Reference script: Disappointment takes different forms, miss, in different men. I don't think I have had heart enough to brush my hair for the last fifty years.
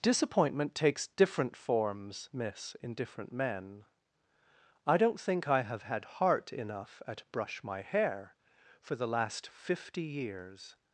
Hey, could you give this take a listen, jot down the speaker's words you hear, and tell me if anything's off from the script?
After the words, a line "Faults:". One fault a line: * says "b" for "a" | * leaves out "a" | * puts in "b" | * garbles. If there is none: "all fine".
Disappointment takes different forms, miss, in different men. I don't think I have had heart enough at brush my hair for the last fifty years.
Faults:
* says "at" for "to"